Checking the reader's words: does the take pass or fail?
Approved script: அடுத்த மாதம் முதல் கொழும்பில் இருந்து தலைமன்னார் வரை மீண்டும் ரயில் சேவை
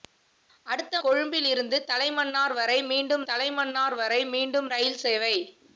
fail